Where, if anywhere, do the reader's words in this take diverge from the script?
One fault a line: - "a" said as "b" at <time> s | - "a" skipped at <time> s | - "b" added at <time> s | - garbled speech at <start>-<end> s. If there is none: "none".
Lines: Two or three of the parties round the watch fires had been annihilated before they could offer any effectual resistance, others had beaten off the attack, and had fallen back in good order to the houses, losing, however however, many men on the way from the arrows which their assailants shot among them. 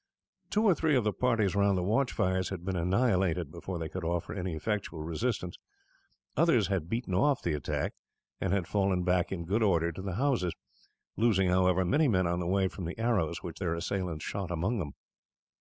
- "however" skipped at 11.8 s